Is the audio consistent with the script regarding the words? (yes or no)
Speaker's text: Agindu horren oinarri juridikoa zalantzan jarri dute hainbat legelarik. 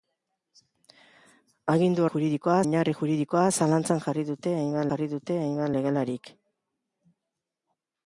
no